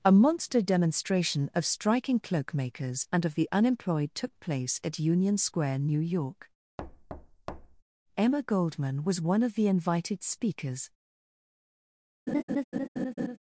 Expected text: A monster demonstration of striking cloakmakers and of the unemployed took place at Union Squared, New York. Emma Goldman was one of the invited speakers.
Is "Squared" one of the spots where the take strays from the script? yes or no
yes